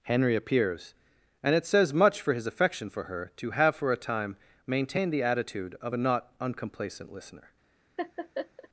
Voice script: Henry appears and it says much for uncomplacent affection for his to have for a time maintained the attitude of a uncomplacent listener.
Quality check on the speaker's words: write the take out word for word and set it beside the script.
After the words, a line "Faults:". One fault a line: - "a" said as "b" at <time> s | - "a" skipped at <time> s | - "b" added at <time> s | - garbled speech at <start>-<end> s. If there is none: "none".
Henry appears and it says much for his affection for her to have for a time maintained the attitude of a not uncomplacent listener.
Faults:
- "uncomplacent" said as "his" at 2.3 s
- "his" said as "her" at 3.0 s
- "not" added at 6.0 s